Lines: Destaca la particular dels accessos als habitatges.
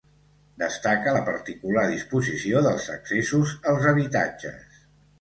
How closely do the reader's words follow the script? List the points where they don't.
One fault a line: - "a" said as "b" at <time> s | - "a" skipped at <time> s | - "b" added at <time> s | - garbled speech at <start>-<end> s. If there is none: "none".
- "disposició" added at 2.0 s